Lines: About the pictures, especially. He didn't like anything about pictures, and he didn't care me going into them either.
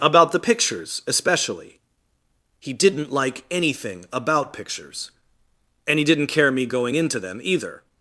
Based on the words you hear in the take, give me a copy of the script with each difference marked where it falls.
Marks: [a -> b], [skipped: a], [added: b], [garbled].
About the pictures, especially. He didn't like anything about pictures, and he didn't care me going into them either.